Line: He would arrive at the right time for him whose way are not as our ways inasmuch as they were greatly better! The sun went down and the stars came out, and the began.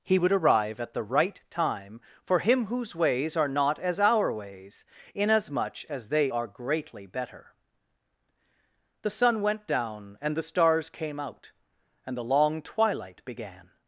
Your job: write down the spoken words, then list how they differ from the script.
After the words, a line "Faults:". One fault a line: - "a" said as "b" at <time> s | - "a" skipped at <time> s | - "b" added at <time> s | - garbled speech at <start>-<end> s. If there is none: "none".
He would arrive at the right time for him whose ways are not as our ways inasmuch as they are greatly better! The sun went down and the stars came out, and the long twilight began.
Faults:
- "way" said as "ways" at 3.0 s
- "were" said as "are" at 6.3 s
- "long twilight" added at 12.2 s